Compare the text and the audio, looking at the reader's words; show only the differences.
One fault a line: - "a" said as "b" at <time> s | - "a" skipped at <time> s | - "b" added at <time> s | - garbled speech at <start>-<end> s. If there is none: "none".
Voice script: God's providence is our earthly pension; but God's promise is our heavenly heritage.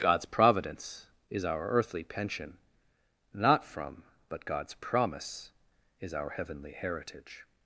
- "not from" added at 3.4 s